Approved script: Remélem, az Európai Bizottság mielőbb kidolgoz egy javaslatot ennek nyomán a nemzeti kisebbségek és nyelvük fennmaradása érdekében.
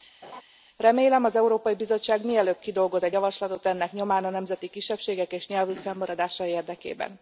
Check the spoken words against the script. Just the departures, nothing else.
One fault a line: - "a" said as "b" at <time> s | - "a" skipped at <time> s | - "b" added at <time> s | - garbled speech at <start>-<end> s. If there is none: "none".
none